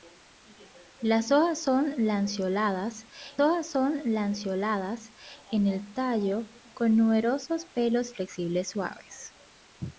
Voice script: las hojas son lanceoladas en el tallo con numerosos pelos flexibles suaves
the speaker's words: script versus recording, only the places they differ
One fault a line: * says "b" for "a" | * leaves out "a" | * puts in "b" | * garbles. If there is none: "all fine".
* puts in "hojas son lanceoladas"